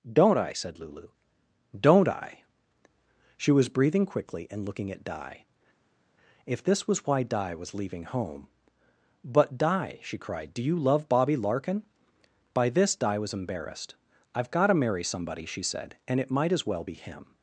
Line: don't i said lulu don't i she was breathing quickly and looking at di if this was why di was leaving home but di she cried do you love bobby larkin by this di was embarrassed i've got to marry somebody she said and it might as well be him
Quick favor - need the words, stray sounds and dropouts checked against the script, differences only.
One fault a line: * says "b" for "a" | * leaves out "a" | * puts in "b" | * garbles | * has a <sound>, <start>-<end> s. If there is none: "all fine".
all fine